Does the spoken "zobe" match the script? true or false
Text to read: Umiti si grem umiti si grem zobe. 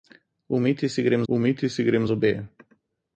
true